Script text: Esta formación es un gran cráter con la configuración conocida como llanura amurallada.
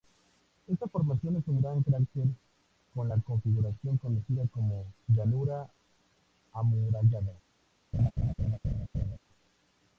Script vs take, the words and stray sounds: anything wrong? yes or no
yes